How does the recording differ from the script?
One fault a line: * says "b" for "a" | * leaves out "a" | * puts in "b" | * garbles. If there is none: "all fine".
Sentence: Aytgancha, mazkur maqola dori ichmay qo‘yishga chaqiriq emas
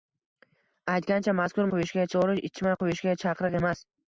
* says "qo‘yishga" for "maqola"